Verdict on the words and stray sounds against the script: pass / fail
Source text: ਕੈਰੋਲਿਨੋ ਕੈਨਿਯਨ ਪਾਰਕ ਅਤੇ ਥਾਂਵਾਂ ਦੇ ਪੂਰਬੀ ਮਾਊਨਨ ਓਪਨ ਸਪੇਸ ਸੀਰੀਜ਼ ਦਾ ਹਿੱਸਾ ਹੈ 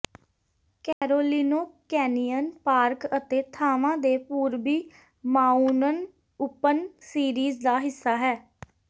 fail